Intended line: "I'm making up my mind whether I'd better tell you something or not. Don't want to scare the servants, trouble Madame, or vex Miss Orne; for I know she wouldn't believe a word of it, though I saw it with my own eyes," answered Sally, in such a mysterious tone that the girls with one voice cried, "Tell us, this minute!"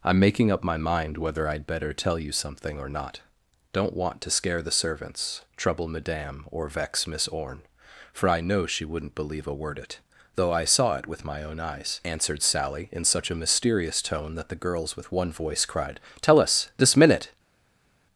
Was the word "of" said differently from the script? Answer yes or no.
yes